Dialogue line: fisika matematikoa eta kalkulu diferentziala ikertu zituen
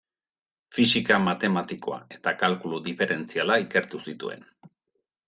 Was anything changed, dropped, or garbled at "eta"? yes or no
no